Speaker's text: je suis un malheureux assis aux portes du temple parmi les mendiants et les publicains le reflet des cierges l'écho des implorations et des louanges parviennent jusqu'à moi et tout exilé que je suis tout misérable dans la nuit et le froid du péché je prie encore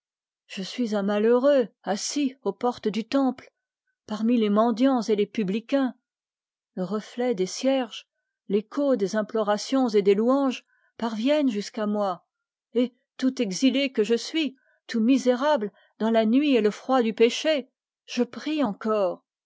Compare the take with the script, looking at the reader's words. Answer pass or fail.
pass